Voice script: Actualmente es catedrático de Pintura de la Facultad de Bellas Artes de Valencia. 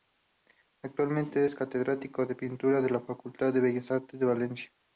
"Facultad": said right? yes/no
yes